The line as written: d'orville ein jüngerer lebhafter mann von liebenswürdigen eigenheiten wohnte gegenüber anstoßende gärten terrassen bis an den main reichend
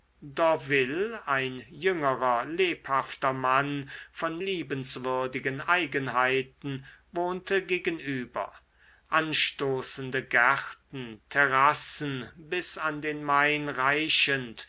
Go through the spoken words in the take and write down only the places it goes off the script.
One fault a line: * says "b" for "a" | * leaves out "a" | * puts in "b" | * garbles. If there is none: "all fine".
all fine